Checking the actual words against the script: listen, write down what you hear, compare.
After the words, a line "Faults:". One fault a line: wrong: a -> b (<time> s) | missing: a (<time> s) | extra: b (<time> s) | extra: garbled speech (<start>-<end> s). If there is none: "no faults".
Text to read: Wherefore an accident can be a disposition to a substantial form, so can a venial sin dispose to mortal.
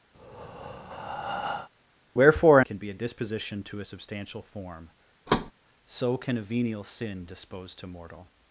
Wherefore can be a disposition to a substantial form, so can a venial sin dispose to mortal.
Faults:
missing: an accident (2.6 s)